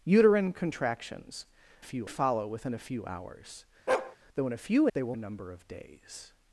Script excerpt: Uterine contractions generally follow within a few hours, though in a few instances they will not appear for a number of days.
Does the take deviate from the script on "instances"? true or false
true